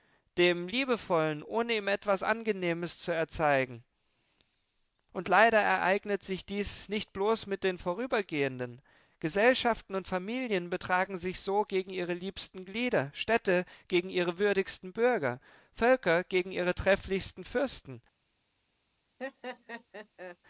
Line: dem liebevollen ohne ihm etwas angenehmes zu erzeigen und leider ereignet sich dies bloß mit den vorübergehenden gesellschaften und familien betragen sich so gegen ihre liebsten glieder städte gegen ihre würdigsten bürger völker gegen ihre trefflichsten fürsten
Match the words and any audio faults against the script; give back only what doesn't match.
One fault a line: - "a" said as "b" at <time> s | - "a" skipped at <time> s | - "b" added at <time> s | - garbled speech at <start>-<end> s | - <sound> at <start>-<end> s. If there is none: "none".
- "nicht" added at 6.9 s
- laugh at 19.2-20.4 s